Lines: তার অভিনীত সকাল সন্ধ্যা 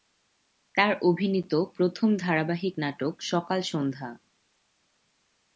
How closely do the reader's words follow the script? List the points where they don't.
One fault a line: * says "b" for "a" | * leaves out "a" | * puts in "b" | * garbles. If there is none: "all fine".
* puts in "প্রথম ধারাবাহিক নাটক"